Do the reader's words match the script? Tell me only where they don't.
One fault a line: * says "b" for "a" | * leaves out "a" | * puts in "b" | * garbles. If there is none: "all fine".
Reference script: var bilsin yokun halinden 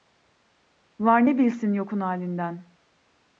* puts in "ne"